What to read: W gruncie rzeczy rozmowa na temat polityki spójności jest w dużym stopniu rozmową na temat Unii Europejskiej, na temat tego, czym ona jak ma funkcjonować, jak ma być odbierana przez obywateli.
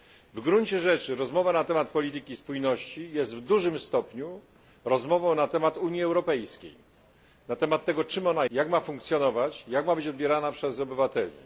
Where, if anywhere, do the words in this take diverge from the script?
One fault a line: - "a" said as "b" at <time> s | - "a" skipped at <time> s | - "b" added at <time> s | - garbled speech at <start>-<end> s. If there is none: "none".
none